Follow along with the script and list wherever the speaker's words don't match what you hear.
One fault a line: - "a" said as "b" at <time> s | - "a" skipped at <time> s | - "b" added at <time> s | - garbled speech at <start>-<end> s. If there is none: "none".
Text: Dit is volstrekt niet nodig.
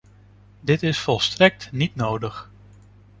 none